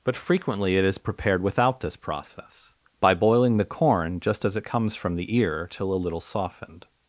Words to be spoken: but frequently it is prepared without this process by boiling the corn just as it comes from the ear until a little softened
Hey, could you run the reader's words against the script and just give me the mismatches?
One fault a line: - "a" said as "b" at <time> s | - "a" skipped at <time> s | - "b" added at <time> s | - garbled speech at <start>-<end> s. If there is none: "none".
- "until" said as "till" at 5.7 s